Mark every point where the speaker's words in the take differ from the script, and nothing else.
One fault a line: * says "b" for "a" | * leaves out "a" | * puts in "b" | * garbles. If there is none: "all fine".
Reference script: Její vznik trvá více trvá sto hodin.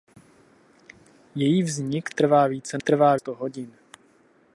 all fine